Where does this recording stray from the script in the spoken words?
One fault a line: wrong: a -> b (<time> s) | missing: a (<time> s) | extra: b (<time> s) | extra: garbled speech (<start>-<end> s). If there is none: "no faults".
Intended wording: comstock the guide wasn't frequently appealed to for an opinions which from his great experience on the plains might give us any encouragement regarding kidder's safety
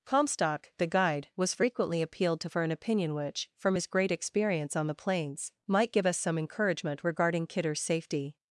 wrong: wasn't -> was (1.4 s)
wrong: opinions -> opinion (2.7 s)
wrong: any -> some (6.2 s)